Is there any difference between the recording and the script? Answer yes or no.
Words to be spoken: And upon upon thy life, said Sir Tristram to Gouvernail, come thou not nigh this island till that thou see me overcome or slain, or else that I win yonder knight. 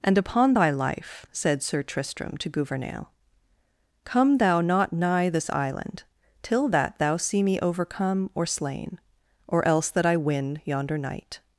yes